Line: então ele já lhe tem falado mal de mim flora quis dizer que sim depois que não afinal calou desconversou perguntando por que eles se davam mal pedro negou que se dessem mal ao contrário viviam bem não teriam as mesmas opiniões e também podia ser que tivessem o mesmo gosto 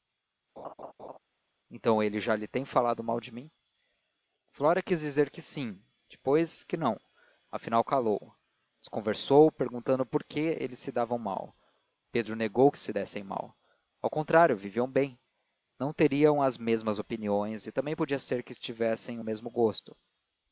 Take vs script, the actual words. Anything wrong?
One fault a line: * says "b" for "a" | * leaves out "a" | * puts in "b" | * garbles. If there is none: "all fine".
all fine